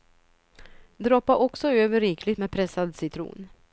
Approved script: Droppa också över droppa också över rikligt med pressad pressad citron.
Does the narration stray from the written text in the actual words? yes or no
yes